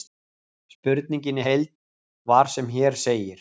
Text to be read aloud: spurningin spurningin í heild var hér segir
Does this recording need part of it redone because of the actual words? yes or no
yes